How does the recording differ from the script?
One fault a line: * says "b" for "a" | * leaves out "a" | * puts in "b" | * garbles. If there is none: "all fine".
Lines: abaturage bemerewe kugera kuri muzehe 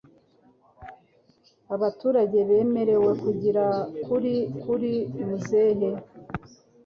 * puts in "kuri"